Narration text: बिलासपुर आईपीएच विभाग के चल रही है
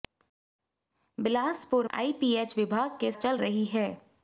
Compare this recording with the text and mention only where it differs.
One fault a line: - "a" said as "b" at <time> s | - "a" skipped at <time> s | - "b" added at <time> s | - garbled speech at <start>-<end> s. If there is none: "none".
none